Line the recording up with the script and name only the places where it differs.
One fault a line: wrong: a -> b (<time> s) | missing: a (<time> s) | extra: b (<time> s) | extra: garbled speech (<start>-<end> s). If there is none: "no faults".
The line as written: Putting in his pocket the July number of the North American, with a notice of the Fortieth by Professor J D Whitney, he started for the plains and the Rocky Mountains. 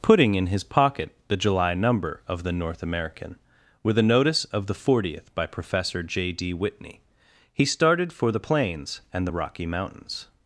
no faults